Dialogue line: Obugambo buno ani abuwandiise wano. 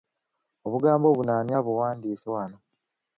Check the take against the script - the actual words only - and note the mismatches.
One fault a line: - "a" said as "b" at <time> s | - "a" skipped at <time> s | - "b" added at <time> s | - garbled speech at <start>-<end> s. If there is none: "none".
none